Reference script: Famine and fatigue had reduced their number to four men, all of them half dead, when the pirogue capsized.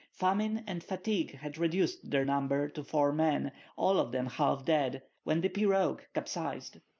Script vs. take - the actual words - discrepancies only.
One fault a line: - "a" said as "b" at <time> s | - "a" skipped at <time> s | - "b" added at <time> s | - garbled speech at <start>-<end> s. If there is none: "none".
none